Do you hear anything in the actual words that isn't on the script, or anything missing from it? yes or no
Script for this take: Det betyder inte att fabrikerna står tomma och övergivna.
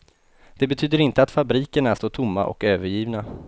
no